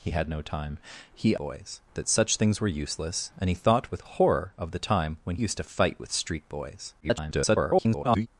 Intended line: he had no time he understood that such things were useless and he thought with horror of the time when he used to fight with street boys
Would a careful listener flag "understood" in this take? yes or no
yes